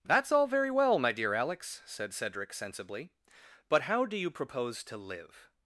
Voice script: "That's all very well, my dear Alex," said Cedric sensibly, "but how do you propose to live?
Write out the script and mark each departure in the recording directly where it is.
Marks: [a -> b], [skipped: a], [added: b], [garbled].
"That's all very well, my dear Alex," said Cedric sensibly, "but how do you propose to live?